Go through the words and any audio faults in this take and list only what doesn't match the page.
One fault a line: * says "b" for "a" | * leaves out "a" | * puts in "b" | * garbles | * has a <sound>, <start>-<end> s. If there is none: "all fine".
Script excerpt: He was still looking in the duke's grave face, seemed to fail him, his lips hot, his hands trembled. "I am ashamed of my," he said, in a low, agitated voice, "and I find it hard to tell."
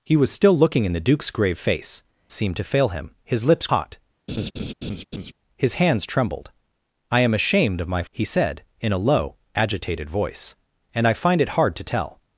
* has a laugh, 4.3-5.3 s